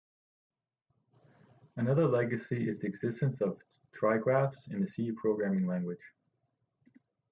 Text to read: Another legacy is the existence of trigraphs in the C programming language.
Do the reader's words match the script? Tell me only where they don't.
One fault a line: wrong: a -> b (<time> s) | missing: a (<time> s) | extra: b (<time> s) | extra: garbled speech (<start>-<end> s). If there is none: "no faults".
no faults